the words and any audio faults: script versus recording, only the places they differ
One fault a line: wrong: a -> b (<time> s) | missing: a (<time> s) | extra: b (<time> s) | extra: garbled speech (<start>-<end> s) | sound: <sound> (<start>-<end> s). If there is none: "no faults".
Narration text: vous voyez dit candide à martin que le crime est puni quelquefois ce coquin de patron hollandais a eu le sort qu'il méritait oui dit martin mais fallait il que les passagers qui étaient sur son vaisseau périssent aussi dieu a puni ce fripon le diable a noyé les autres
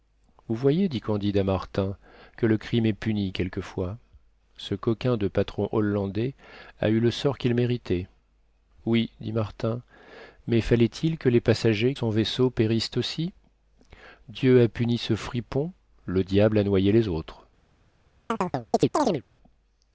missing: qui étaient sur (11.9 s)
sound: chirp (18.3-19.2 s)